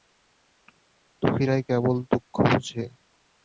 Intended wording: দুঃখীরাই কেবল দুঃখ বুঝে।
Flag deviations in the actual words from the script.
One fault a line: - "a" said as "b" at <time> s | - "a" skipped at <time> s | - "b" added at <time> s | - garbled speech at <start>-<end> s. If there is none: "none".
none